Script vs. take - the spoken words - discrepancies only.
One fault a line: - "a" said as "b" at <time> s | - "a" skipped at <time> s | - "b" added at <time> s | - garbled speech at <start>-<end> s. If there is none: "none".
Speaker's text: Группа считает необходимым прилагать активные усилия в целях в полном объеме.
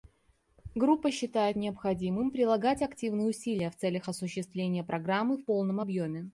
- "осуществления Программы" added at 4.1 s